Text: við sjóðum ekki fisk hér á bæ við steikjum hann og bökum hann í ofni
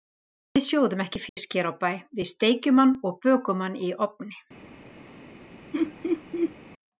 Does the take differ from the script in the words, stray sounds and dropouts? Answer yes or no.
yes